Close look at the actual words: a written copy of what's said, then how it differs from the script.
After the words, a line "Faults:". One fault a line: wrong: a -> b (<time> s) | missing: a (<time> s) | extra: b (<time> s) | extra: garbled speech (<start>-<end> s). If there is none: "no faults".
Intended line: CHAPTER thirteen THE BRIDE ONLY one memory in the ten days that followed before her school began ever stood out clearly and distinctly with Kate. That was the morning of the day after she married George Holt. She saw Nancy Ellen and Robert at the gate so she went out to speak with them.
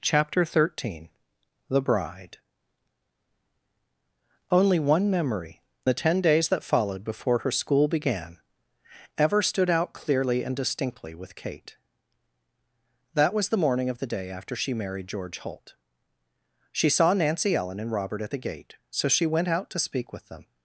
CHAPTER thirteen THE BRIDE ONLY one memory the ten days that followed before her school began ever stood out clearly and distinctly with Kate. That was the morning of the day after she married George Holt. She saw Nancy Ellen and Robert at the gate so she went out to speak with them.
Faults:
missing: in (5.6 s)